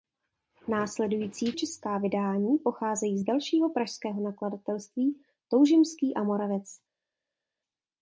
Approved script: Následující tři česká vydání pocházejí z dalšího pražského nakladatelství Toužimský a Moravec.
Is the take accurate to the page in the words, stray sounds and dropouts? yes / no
no